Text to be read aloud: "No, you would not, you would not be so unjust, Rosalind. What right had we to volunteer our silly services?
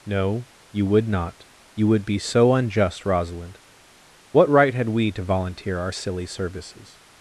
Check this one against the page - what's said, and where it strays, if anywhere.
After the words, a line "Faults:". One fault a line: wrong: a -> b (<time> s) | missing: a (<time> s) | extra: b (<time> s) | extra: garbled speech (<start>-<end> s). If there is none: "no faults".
"No, you would not, you would be so unjust, Rosalind. What right had we to volunteer our silly services?
Faults:
missing: not (2.0 s)